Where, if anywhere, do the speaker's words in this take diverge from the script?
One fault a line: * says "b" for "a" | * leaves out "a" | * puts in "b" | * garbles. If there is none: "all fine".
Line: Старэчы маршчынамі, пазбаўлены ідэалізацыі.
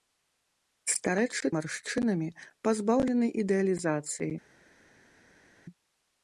all fine